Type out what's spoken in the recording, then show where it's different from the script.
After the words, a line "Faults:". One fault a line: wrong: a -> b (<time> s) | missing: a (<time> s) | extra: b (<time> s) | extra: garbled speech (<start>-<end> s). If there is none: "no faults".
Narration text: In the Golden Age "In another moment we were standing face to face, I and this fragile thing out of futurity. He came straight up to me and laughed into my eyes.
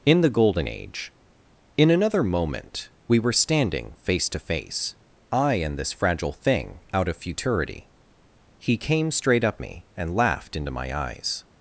In the Golden Age "In another moment we were standing face to face, I and this fragile thing out of futurity. He came straight up me and laughed into my eyes.
Faults:
missing: to (9.6 s)